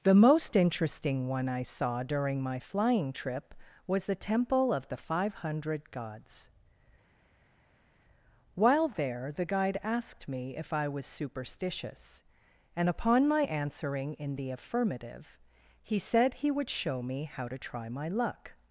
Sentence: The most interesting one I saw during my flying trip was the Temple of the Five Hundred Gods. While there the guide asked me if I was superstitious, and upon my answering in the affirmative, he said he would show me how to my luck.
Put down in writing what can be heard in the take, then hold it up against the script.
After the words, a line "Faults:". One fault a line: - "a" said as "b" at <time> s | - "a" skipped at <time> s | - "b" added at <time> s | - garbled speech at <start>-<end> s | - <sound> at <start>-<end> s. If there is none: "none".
The most interesting one I saw during my flying trip was the Temple of the Five Hundred Gods. While there the guide asked me if I was superstitious, and upon my answering in the affirmative, he said he would show me how to try my luck.
Faults:
- "try" added at 17.6 s